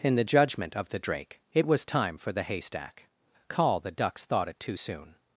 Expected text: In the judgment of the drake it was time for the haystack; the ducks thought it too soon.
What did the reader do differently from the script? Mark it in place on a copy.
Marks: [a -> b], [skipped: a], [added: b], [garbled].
In the judgment of the drake it was time for the haystack; [added: call] the ducks thought it too soon.